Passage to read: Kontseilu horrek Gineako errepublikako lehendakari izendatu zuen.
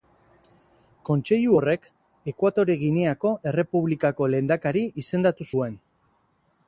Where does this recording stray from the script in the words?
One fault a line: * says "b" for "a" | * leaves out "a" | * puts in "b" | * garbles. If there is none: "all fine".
* puts in "Ekuatore"